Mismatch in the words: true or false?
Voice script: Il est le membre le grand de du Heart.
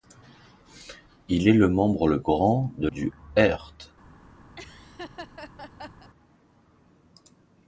false